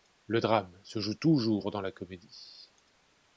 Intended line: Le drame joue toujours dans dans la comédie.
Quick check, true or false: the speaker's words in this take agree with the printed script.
false